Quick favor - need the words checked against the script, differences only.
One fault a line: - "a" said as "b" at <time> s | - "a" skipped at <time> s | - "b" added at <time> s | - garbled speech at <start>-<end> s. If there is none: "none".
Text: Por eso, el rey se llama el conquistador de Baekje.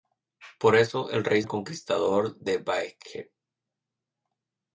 - "se llama" skipped at 1.4 s